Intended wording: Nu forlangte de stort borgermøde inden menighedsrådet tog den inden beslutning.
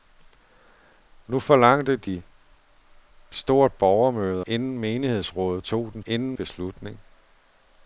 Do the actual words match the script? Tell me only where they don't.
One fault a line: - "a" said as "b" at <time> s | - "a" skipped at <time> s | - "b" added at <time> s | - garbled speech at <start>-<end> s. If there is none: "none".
none